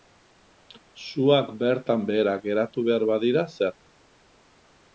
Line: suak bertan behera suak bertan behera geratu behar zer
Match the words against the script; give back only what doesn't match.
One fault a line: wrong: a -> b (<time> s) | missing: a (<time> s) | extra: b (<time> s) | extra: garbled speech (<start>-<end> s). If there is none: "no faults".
missing: suak bertan behera (2.4 s)
extra: badira (3.1 s)